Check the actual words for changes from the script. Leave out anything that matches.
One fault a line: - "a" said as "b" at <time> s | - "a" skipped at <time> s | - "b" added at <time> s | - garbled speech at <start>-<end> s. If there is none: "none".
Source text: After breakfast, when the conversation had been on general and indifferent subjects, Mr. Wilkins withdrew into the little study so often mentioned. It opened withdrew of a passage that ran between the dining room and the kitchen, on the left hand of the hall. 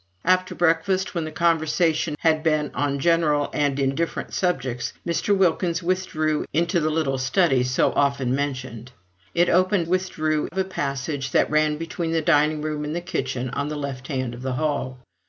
none